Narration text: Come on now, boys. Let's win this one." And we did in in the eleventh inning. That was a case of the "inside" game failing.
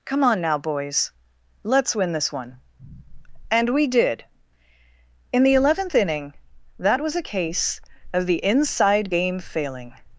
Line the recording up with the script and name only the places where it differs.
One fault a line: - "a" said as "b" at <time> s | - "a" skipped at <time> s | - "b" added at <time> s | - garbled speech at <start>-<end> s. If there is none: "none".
- "in" skipped at 5.4 s